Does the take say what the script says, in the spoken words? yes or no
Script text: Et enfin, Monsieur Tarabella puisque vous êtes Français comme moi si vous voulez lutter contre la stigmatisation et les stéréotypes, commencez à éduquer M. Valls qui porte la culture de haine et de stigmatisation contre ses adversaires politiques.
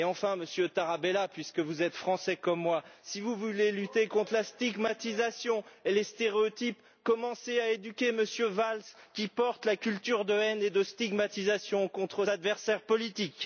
no